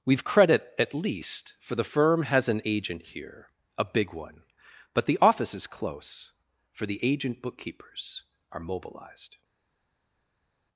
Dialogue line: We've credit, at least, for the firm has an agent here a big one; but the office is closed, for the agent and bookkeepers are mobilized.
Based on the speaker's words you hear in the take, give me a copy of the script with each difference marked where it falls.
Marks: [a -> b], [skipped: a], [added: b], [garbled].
We've credit, at least, for the firm has an agent here a big one; but the office is [closed, -> close] for the agent [skipped: and] bookkeepers are mobilized.